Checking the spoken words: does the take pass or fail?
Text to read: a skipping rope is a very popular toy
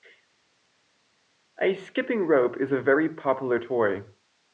pass